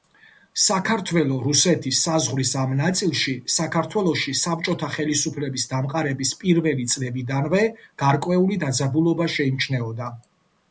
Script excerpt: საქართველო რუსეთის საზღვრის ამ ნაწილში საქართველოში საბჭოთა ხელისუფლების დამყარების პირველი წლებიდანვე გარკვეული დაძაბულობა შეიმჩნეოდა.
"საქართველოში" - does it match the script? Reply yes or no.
yes